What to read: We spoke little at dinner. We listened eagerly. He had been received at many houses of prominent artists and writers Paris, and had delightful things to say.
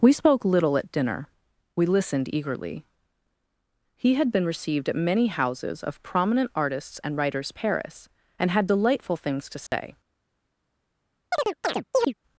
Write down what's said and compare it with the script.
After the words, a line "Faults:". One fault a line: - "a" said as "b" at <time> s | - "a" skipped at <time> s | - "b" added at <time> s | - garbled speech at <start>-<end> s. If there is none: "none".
We spoke little at dinner. We listened eagerly. He had been received at many houses of prominent artists and writers Paris, and had delightful things to say.
Faults:
none